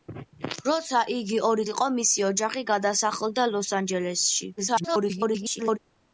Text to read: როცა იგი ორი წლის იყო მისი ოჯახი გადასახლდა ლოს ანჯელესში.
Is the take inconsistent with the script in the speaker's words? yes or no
yes